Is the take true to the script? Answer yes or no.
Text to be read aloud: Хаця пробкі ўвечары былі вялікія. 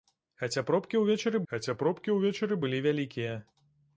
no